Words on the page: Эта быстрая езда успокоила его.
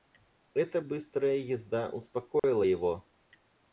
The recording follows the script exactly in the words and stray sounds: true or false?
false